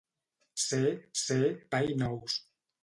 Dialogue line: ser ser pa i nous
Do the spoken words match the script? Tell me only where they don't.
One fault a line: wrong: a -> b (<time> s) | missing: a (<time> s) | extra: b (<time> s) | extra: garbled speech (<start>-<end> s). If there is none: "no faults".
no faults